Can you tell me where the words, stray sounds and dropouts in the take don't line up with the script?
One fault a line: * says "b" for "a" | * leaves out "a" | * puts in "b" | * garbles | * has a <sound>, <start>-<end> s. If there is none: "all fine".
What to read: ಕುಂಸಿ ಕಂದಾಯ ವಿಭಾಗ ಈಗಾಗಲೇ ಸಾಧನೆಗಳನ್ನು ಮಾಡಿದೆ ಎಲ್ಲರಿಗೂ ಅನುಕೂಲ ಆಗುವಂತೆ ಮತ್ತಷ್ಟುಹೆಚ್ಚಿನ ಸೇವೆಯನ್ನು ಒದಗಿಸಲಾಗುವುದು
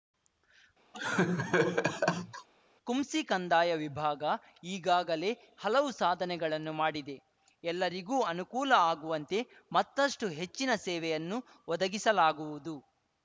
* has a laugh, 0.9-2.5 s
* puts in "ಹಲವು"